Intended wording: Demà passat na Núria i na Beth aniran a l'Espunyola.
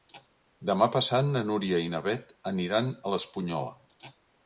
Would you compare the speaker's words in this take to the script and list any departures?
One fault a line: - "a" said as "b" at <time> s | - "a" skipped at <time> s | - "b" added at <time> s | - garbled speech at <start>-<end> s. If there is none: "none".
none